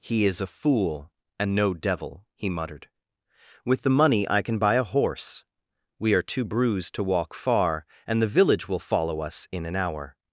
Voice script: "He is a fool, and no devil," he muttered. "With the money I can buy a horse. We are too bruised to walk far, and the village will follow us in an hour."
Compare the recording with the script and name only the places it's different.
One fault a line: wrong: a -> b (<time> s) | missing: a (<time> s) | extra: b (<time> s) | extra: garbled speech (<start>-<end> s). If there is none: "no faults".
no faults